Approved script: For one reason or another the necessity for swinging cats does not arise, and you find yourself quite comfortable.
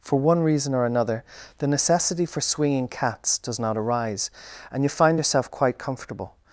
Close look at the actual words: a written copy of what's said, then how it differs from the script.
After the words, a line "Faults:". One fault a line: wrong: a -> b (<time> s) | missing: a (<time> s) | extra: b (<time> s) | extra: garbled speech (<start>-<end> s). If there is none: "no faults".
For one reason or another the necessity for swinging cats does not arise, and you find yourself quite comfortable.
Faults:
no faults